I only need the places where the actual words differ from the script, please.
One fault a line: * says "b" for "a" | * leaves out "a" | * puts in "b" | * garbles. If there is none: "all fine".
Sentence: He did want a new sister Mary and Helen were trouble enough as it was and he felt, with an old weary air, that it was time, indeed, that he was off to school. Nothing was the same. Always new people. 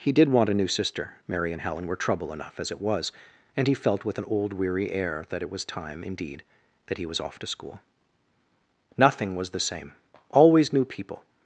all fine